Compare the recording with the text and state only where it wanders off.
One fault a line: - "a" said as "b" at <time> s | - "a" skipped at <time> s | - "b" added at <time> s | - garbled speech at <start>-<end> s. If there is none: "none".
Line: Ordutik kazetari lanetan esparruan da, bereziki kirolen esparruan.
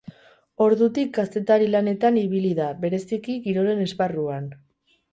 - "esparruan" said as "ibili" at 2.2 s